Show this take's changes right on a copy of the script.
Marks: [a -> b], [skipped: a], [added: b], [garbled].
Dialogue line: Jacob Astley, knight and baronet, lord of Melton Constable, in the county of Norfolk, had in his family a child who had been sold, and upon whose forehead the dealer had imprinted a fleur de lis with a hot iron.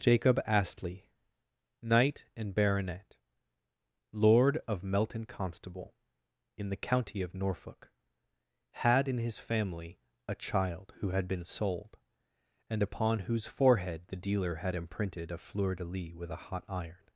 Jacob Astley, knight and baronet, lord of Melton Constable, in the county of Norfolk, had in his family a child who had been sold, and upon whose forehead the dealer had imprinted a fleur de lis with a hot iron.